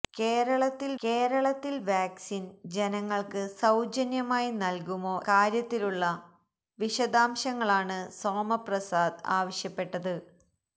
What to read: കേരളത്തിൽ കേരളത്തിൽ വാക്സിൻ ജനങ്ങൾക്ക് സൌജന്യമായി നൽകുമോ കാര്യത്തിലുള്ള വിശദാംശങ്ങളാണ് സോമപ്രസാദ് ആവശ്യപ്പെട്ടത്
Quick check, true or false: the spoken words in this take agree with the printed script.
true